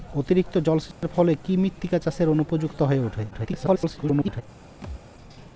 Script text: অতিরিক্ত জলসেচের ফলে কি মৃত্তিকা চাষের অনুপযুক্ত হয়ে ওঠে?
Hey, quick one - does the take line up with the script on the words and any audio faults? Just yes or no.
no